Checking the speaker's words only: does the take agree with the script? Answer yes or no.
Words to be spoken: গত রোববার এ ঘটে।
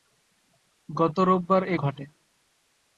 yes